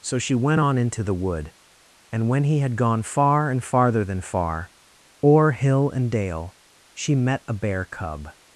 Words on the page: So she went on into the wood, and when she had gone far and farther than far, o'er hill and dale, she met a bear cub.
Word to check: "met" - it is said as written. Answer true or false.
true